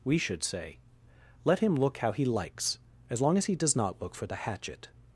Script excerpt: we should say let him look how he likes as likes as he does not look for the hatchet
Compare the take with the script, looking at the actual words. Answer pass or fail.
fail